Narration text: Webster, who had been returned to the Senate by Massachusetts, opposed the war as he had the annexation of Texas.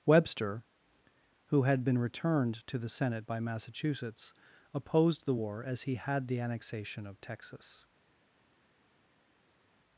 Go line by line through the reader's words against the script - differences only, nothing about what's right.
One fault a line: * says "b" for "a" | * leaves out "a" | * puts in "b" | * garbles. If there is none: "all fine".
all fine